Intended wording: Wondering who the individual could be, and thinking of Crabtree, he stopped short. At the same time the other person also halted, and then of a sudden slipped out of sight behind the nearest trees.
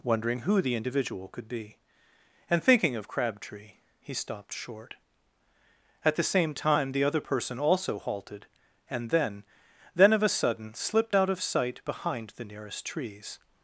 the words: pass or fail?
fail